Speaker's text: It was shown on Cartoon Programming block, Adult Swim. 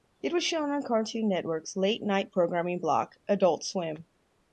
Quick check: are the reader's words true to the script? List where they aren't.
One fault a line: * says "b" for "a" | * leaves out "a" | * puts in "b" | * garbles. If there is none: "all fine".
* puts in "Network's late night"